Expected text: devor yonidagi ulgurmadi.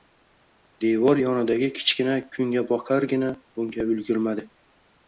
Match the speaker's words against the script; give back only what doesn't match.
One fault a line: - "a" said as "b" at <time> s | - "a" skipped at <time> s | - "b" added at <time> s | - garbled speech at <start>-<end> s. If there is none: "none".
- "kichkina kungaboqargina bunga" added at 1.8 s